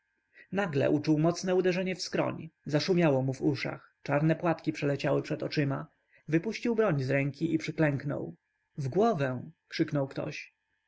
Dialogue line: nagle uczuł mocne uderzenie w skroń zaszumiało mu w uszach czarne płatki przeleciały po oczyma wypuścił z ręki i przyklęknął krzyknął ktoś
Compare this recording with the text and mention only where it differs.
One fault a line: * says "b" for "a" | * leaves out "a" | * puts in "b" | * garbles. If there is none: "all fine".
* says "przed" for "po"
* puts in "broń"
* puts in "w głowę"